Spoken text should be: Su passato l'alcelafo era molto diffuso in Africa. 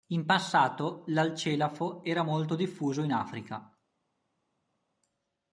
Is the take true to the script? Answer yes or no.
no